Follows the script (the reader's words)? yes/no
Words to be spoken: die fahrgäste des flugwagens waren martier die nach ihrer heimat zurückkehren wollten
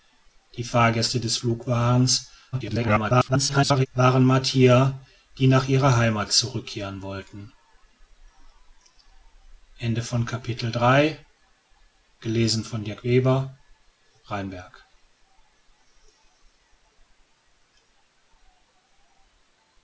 no